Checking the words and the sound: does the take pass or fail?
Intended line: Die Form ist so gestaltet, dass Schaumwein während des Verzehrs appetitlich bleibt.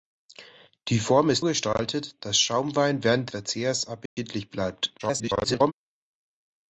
fail